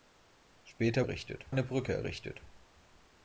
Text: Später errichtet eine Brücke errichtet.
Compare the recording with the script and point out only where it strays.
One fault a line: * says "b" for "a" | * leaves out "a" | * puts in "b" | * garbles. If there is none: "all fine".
all fine